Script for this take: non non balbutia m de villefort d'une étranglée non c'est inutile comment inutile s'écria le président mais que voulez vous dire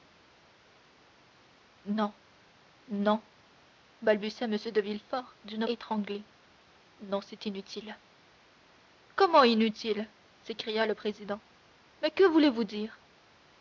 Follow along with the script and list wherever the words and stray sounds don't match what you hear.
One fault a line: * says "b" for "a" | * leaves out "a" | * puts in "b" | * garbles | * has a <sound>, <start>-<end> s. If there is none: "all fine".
all fine